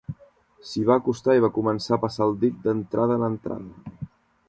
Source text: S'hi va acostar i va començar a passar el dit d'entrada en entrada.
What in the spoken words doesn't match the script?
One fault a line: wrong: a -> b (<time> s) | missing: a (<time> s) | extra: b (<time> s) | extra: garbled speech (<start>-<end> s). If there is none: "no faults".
no faults